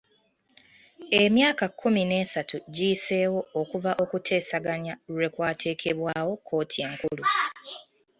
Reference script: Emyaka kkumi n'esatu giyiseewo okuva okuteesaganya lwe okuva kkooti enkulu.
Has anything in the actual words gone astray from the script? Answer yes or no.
yes